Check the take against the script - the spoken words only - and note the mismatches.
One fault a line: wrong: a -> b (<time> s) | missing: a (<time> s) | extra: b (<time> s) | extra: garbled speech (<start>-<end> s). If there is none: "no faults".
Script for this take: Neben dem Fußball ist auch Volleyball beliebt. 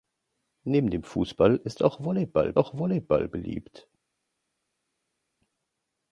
extra: auch Volleyball (2.6 s)